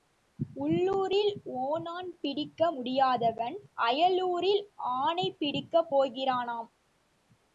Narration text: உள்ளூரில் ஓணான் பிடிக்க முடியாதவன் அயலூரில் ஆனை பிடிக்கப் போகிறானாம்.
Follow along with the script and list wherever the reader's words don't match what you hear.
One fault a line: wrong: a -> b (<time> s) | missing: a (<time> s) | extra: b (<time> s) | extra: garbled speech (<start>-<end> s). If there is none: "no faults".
no faults